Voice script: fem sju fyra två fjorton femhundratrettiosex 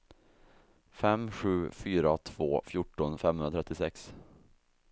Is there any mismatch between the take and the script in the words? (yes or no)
no